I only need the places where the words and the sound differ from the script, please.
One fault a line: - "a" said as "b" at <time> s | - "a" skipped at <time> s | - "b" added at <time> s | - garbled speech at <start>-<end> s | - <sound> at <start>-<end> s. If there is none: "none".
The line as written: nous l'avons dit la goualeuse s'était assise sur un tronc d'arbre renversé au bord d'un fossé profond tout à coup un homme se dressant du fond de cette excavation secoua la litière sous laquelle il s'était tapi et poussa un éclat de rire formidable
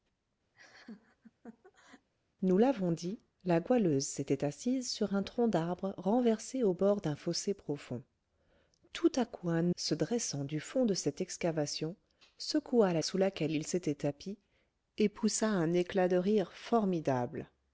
- laugh at 0.5-2.1 s
- "homme" skipped at 9.8 s
- "litière" skipped at 13.0 s